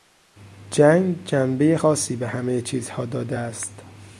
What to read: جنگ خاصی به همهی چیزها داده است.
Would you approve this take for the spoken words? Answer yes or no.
no